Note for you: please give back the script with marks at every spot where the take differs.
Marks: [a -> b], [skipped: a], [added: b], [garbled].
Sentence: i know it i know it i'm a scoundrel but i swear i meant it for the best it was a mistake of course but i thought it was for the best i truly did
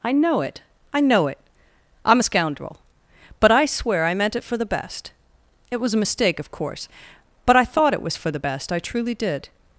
i know it i know it i'm a scoundrel but i swear i meant it for the best it was a mistake of course but i thought it was for the best i truly did